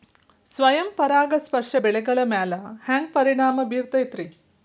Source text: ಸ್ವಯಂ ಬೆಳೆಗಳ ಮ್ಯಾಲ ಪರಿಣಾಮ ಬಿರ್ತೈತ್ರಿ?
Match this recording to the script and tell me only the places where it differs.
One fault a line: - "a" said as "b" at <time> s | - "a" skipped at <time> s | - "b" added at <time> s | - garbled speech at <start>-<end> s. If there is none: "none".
- "ಪರಾಗಸ್ಪರ್ಶ" added at 0.9 s
- "ಹ್ಯಾಂಗ" added at 2.8 s